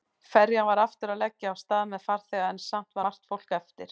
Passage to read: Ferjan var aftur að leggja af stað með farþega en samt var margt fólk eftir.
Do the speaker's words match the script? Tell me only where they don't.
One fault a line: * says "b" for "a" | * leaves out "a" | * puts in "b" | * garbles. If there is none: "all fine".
* leaves out "var"